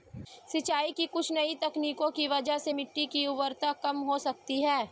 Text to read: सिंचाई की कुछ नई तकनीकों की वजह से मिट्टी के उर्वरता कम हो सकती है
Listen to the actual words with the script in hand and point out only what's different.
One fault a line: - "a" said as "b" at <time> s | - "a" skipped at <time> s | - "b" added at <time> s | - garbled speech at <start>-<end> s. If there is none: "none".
- "के" said as "की" at 3.1 s